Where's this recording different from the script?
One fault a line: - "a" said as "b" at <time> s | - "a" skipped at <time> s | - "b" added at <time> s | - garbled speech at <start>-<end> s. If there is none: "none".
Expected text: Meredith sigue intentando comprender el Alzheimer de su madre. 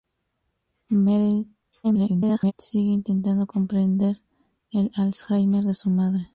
- garbled speech at 1.8-2.5 s